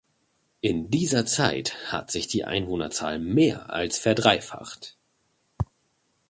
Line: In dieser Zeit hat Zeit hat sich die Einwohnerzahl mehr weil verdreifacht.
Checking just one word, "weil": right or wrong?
wrong